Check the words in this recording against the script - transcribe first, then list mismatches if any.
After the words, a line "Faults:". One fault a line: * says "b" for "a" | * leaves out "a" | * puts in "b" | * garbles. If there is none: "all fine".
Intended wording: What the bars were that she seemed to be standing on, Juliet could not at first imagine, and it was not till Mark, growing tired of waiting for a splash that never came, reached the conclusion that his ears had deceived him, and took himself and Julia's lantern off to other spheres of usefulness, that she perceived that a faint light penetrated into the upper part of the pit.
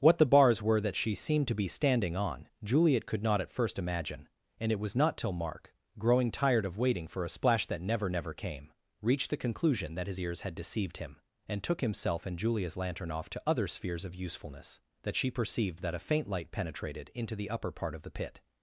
What the bars were that she seemed to be standing on, Juliet could not at first imagine, and it was not till Mark, growing tired of waiting for a splash that never never came, reached the conclusion that his ears had deceived him, and took himself and Julia's lantern off to other spheres of usefulness, that she perceived that a faint light penetrated into the upper part of the pit.
Faults:
* puts in "never"